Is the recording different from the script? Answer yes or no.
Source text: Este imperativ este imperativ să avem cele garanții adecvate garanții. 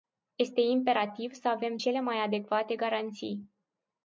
yes